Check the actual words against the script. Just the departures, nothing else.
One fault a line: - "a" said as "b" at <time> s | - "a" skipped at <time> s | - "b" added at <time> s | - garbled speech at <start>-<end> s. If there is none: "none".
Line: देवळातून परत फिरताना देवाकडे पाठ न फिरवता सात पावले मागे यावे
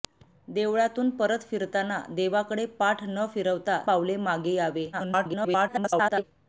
- "सात" skipped at 3.8 s
- garbled speech at 4.9-6.2 s